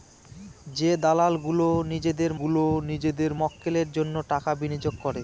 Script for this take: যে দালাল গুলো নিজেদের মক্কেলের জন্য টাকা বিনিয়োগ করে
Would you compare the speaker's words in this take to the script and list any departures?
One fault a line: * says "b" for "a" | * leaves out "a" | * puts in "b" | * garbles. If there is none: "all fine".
* puts in "গুলো নিজেদের"